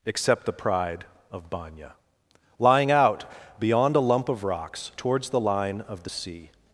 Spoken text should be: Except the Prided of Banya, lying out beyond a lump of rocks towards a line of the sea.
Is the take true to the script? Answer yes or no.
no